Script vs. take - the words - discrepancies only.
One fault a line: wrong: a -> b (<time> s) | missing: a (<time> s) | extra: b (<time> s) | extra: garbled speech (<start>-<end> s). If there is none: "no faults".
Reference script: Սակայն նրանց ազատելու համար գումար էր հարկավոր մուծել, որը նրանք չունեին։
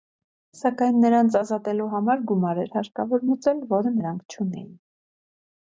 no faults